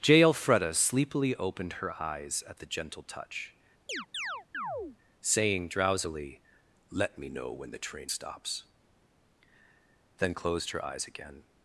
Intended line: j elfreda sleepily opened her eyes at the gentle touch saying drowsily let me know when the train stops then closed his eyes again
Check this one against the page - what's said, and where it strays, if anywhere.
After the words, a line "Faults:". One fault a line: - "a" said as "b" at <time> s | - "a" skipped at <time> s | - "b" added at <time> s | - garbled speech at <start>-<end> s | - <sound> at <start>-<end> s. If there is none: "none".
j elfreda sleepily opened her eyes at the gentle touch saying drowsily let me know when the train stops then closed her eyes again
Faults:
- chirp at 3.9-5.0 s
- "his" said as "her" at 10.7 s